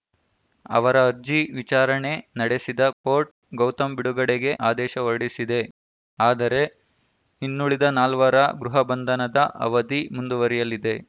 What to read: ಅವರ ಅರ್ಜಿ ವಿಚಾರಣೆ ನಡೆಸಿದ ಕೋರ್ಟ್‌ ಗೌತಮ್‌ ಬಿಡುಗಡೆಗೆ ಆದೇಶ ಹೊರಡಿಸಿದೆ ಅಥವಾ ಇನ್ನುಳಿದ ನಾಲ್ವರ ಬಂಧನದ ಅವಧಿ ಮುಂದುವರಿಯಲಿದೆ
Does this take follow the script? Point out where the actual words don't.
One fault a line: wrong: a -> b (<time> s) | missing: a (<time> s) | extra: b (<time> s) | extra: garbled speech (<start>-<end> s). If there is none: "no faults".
wrong: ಅಥವಾ -> ಆದರೆ (6.2 s)
extra: ಗೃಹ (8.6 s)